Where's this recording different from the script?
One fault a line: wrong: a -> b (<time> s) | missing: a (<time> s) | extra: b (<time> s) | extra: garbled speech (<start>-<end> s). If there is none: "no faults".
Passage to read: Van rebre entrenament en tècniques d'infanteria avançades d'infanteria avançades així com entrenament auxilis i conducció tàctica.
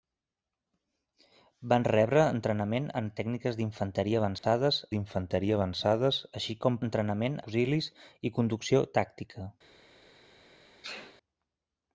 no faults